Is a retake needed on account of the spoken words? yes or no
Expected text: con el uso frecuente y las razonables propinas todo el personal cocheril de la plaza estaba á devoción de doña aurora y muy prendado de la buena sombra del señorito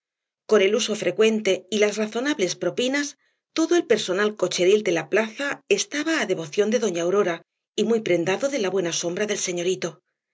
no